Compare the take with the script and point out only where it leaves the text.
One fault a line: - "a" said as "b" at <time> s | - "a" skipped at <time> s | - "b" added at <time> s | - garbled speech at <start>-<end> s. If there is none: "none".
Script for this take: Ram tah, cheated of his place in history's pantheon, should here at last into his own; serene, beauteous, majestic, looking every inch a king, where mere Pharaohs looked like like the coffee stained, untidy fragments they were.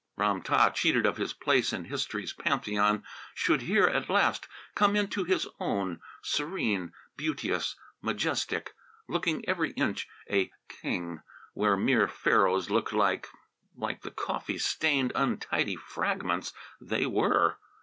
- "come" added at 4.7 s